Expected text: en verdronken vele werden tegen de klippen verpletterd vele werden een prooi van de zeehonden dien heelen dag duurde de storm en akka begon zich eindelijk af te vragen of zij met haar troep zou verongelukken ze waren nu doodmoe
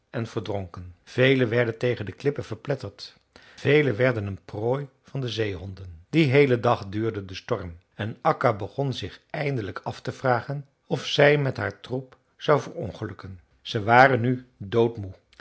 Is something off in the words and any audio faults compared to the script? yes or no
no